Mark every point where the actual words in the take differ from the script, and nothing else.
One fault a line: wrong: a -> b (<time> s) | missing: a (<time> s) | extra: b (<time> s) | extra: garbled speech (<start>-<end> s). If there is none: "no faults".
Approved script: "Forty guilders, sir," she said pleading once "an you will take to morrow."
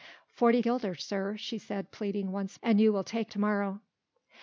no faults